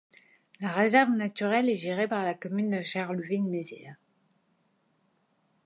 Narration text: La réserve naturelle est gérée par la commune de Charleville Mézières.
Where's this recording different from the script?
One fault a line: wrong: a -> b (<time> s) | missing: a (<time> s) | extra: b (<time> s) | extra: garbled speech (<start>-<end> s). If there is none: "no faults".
no faults